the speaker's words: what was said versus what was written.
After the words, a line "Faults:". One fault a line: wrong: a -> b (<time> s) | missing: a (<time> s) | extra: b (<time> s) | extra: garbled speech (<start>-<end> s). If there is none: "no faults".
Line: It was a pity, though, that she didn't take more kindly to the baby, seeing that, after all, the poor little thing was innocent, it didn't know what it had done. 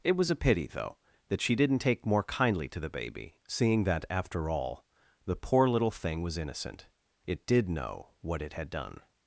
It was a pity, though, that she didn't take more kindly to the baby, seeing that, after all, the poor little thing was innocent, it did know what it had done.
Faults:
wrong: didn't -> did (7.5 s)